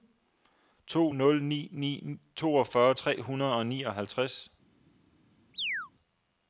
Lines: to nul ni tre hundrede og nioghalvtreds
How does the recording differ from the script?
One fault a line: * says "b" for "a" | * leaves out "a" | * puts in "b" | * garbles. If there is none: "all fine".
* puts in "ni toogfyrre"